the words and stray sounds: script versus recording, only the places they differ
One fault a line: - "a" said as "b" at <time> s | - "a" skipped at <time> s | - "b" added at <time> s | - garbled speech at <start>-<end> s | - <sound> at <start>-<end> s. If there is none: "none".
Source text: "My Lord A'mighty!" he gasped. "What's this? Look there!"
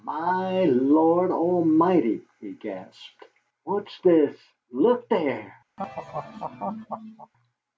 - laugh at 5.8-7.3 s